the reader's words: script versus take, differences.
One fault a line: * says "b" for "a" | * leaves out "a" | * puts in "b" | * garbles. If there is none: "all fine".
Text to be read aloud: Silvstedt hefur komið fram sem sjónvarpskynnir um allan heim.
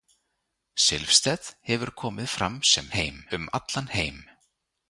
* says "heim" for "sjónvarpskynnir"